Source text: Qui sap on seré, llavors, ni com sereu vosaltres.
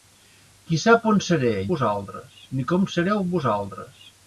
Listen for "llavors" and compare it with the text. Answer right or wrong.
wrong